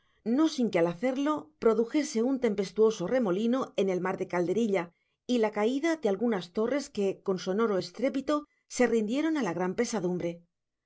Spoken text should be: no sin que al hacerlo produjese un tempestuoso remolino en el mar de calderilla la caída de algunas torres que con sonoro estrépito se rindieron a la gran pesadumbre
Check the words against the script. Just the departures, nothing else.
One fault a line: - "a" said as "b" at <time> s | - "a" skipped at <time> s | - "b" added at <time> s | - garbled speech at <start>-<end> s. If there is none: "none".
- "y" added at 5.3 s